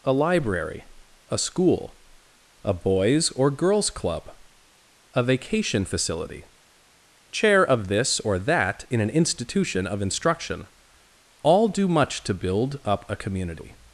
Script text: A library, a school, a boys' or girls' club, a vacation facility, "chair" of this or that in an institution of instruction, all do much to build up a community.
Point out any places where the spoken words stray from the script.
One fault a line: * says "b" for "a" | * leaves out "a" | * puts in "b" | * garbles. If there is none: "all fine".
all fine